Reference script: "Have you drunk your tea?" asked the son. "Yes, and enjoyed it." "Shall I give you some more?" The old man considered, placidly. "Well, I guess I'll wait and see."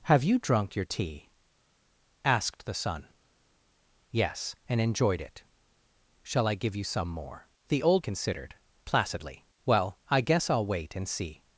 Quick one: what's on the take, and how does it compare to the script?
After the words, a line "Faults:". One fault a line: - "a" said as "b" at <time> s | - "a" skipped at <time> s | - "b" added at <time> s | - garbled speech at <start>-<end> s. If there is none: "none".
"Have you drunk your tea?" asked the son. "Yes, and enjoyed it." "Shall I give you some more?" The old considered, placidly. "Well, I guess I'll wait and see."
Faults:
- "man" skipped at 8.1 s